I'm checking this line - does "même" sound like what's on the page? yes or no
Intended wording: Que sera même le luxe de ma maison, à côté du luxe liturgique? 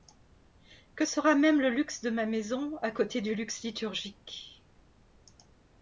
yes